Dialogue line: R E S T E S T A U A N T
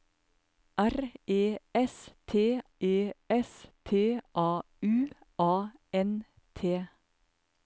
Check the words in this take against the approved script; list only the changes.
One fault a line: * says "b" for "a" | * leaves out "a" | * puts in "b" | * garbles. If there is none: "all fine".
all fine